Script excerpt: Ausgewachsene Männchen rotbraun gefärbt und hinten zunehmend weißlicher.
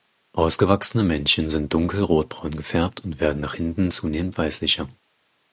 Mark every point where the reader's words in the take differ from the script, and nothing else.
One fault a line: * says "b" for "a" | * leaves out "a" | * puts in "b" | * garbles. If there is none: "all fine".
* puts in "sind dunkel"
* puts in "werden nach"